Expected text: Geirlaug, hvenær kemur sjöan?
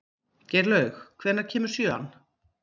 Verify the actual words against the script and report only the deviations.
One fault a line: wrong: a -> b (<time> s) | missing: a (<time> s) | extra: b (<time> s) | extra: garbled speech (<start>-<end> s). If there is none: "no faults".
no faults